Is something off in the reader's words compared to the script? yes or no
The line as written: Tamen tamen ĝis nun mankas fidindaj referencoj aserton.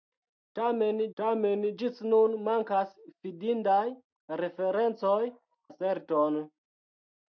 no